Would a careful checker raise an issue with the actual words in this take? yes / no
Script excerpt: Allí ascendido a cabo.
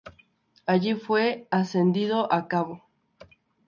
yes